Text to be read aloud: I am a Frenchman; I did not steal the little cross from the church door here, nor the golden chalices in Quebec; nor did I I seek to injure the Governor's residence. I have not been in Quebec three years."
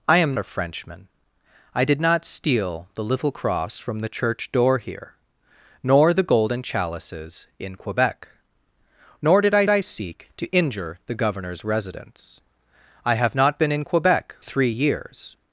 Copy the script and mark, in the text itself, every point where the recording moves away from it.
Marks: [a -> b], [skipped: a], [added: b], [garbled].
I am a Frenchman; I did not steal the little cross from the church door here, nor the golden chalices in Quebec; nor did I I seek to injure the Governor's residence. I have not been in Quebec three years."